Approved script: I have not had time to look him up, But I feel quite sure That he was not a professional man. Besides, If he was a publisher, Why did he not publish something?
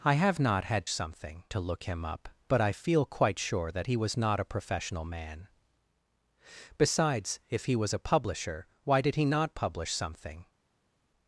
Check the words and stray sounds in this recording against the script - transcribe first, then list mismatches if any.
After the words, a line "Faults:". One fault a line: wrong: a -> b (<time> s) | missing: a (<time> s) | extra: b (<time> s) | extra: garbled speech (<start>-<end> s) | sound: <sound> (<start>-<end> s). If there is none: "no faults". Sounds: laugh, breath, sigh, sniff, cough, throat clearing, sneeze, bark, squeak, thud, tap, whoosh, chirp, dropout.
I have not had something to look him up, But I feel quite sure That he was not a professional man. Besides, If he was a publisher, Why did he not publish something?
Faults:
wrong: time -> something (0.9 s)